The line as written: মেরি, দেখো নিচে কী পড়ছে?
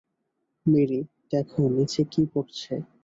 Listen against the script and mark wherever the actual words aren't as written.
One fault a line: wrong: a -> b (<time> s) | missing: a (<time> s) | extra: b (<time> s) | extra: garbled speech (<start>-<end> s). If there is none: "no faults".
no faults